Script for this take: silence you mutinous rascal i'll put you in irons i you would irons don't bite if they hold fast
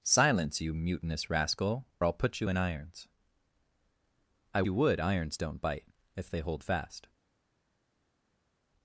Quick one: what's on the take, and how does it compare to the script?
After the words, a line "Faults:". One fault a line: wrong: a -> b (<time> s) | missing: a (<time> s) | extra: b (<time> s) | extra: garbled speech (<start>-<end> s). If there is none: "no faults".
silence you mutinous rascal i'll put you in irons i you would irons don't bite if they hold fast
Faults:
no faults